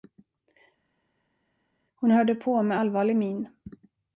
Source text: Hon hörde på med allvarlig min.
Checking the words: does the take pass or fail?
pass